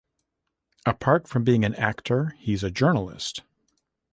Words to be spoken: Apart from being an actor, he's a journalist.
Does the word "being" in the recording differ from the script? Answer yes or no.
no